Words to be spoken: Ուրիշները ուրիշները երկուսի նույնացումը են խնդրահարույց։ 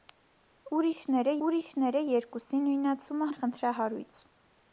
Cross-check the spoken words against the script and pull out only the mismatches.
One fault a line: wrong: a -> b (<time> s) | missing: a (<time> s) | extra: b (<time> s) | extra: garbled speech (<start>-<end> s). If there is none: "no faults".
no faults